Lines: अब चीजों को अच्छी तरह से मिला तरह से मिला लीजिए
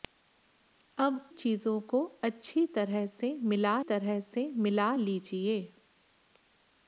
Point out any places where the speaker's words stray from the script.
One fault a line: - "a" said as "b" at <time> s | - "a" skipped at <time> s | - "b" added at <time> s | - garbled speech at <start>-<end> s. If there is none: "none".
none